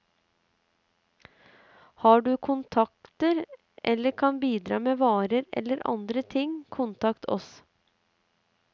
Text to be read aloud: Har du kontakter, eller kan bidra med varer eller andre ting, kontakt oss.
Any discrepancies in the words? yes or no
no